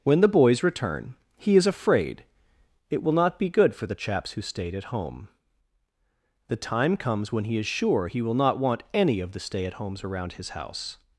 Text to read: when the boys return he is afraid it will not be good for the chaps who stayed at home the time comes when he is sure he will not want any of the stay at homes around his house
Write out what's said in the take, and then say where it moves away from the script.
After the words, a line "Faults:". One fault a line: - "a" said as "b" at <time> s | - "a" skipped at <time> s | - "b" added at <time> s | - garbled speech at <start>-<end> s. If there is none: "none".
when the boys return he is afraid it will not be good for the chaps who stayed at home the time comes when he is sure he will not want any of the stay at homes around his house
Faults:
none